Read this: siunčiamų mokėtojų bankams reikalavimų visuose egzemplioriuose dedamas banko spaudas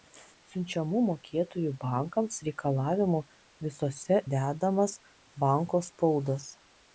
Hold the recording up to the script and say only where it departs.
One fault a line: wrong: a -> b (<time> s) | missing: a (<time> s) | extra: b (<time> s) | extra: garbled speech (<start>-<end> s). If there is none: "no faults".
missing: egzemplioriuose (4.2 s)